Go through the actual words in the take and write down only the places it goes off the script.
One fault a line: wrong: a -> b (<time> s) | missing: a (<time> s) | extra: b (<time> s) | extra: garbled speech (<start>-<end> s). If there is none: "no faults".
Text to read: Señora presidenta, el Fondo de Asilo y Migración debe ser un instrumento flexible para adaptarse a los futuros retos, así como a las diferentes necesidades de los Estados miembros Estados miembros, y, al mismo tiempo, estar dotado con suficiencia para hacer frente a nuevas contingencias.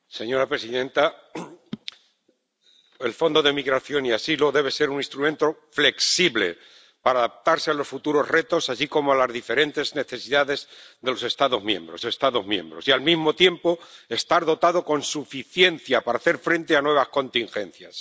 no faults